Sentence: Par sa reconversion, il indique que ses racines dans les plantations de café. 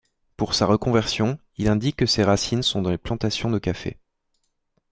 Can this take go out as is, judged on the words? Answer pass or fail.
fail